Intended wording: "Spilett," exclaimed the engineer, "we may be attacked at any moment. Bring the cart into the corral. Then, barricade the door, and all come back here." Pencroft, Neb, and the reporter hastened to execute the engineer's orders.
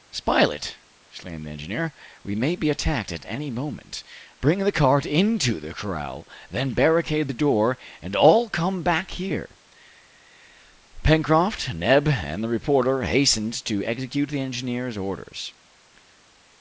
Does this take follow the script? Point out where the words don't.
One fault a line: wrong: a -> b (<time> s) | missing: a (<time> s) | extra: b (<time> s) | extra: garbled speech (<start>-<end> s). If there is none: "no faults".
no faults